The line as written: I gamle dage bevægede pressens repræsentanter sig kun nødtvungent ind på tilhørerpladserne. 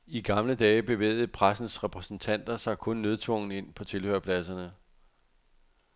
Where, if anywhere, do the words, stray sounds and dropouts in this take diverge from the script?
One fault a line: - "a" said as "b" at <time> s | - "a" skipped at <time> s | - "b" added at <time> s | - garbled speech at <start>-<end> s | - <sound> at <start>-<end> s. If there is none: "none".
none